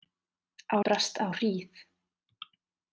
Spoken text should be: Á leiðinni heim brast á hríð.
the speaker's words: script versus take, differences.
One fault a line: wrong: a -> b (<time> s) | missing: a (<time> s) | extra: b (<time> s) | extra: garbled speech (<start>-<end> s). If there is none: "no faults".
missing: leiðinni heim (0.8 s)